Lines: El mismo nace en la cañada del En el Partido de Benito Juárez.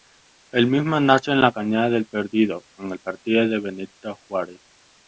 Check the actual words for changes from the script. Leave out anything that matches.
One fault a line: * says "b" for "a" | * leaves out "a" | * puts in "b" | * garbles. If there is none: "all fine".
* puts in "Perdido"